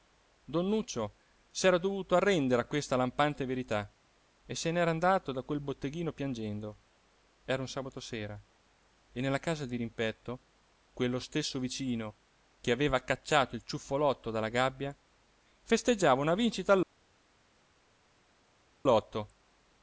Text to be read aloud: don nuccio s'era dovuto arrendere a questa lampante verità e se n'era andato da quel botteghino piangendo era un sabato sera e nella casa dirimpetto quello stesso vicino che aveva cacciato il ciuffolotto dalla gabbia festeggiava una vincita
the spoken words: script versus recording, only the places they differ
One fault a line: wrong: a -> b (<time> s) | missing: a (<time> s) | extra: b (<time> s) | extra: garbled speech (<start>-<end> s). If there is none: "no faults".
no faults